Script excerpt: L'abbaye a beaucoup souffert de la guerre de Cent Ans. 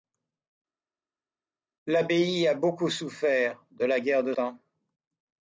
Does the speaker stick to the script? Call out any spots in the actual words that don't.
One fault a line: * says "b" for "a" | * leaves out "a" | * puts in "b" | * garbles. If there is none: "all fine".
* leaves out "Cent"